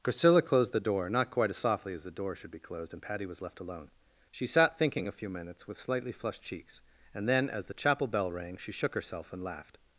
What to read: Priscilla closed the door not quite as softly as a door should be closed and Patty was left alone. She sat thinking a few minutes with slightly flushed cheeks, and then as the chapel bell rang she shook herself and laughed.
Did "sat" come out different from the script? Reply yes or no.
no